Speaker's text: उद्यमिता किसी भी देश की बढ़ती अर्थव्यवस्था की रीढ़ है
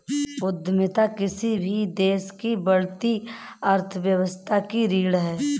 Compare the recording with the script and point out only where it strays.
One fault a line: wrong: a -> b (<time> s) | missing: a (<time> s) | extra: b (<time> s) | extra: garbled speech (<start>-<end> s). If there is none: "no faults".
no faults